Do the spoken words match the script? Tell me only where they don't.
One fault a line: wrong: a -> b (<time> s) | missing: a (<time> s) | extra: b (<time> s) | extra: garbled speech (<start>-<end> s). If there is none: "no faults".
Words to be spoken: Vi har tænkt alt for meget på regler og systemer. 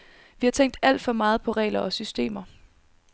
no faults